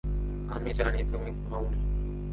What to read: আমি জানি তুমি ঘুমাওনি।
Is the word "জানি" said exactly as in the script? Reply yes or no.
yes